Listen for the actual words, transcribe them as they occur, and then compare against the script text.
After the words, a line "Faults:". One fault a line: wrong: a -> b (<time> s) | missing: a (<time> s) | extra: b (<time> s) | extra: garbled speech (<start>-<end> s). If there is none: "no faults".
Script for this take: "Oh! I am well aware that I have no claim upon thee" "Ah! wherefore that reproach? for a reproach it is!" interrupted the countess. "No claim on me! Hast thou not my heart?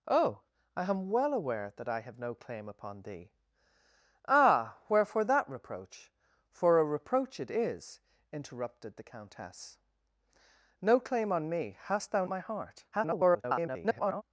"Oh! I am well aware that I have no claim upon thee" "Ah! wherefore that reproach? for a reproach it is!" interrupted the countess. "No claim on me! Hast thou my heart? [garbled]
Faults:
missing: not (12.2 s)
extra: garbled speech (12.9-14.2 s)